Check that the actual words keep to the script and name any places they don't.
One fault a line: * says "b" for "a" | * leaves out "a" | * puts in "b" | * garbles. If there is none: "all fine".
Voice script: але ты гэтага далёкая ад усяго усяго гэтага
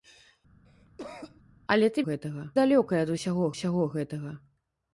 all fine